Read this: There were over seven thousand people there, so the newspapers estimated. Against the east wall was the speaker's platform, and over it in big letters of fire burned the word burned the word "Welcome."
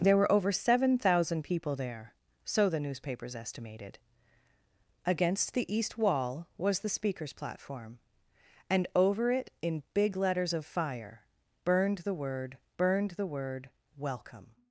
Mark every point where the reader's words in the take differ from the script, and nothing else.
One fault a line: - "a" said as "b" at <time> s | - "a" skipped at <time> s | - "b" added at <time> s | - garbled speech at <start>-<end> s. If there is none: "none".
none